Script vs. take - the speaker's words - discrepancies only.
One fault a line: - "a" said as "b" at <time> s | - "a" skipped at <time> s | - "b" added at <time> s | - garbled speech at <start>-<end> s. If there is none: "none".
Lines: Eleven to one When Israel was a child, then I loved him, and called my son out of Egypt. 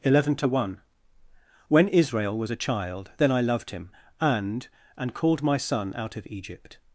- "and" added at 5.0 s